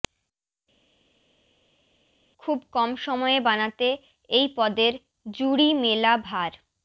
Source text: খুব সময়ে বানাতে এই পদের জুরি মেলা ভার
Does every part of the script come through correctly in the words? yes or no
no